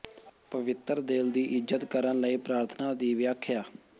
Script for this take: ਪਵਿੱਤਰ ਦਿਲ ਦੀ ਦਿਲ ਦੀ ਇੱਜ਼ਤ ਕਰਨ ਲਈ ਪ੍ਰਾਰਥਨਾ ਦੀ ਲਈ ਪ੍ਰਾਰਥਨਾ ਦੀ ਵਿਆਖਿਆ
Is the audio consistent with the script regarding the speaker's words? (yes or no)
no